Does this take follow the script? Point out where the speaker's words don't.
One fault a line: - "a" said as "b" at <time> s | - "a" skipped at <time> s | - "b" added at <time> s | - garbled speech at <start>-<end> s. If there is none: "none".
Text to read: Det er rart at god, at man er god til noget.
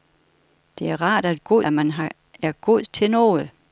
none